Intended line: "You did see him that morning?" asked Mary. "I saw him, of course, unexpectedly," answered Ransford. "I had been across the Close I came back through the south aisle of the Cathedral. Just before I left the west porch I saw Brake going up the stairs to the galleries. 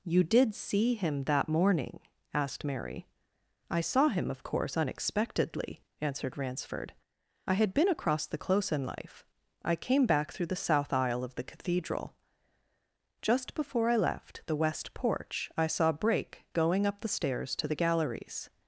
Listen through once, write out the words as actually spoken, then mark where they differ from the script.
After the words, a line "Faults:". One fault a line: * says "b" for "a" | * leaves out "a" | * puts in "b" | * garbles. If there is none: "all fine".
"You did see him that morning?" asked Mary. "I saw him, of course, unexpectedly," answered Ransford. "I had been across the Close in life I came back through the south aisle of the Cathedral. Just before I left the west porch I saw Brake going up the stairs to the galleries.
Faults:
* puts in "in life"